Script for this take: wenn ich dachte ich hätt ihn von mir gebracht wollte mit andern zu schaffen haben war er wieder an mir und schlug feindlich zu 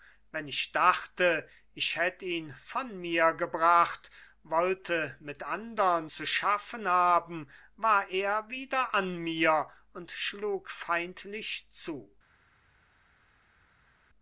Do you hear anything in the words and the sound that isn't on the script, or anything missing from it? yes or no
no